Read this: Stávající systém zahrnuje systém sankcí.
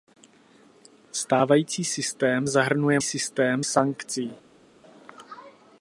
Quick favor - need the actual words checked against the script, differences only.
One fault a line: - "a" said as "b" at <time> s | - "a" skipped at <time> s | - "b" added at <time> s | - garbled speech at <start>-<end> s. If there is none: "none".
none